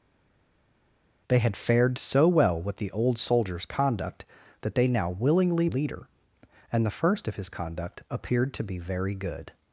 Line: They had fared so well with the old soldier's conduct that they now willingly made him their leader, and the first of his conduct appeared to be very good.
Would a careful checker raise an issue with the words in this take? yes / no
yes